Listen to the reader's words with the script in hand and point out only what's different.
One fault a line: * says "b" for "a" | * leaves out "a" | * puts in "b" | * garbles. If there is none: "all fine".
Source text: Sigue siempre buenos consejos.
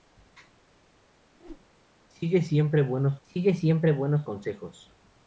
* puts in "sigue siempre buenos"